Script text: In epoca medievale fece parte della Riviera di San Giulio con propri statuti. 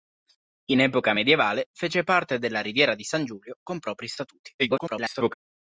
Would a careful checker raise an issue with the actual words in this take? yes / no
yes